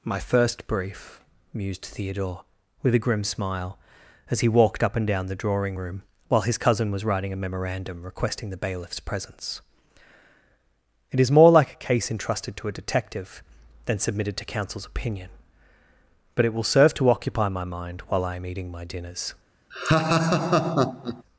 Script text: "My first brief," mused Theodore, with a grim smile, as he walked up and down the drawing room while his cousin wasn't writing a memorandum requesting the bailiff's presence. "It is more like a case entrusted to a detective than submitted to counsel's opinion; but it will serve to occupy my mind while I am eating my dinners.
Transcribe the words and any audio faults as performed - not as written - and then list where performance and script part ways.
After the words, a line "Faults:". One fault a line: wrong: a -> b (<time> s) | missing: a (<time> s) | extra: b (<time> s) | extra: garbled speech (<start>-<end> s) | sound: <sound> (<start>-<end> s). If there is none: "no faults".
"My first brief," mused Theodore, with a grim smile, as he walked up and down the drawing room while his cousin was writing a memorandum requesting the bailiff's presence. "It is more like a case entrusted to a detective than submitted to counsel's opinion; but it will serve to occupy my mind while I am eating my dinners.
Faults:
wrong: wasn't -> was (6.9 s)
sound: laugh (19.7-21.2 s)